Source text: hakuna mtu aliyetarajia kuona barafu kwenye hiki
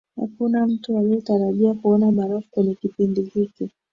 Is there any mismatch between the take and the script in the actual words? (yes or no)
yes